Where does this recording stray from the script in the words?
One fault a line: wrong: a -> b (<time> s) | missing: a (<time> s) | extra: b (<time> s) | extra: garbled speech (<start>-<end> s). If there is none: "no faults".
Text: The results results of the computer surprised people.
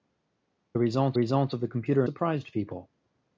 no faults